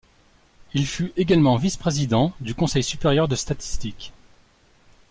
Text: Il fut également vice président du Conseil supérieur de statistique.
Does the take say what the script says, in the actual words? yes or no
yes